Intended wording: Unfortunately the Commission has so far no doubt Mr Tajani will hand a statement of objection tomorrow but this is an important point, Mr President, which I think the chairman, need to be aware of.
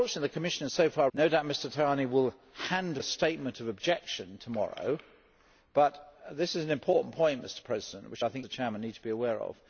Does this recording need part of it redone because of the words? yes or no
no